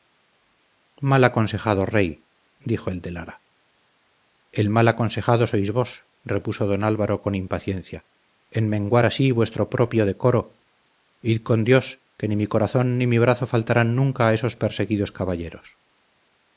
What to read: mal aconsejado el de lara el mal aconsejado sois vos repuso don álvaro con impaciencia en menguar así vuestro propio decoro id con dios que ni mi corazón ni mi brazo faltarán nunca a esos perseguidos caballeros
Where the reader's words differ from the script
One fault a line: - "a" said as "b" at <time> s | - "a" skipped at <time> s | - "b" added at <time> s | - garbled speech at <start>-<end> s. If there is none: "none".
- "rey dijo" added at 1.9 s